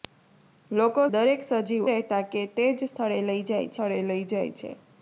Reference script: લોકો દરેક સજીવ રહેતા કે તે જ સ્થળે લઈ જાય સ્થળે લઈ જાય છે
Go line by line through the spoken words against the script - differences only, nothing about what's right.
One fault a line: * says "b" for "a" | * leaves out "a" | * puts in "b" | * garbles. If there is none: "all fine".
all fine